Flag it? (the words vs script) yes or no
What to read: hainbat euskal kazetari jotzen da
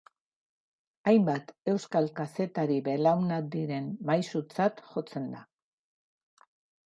yes